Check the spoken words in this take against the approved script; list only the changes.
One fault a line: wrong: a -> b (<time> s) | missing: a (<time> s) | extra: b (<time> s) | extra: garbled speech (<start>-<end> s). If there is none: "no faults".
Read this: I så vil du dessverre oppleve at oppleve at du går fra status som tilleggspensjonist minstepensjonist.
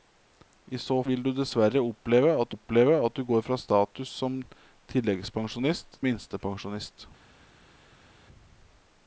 no faults